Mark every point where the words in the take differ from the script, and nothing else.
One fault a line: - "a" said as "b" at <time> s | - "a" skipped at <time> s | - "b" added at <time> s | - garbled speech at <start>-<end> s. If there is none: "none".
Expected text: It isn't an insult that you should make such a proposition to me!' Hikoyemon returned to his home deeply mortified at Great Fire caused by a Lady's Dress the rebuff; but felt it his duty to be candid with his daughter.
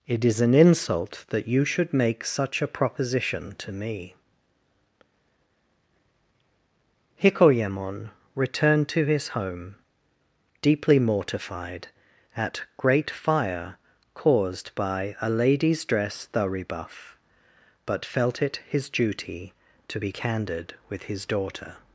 - "isn't" said as "is" at 0.2 s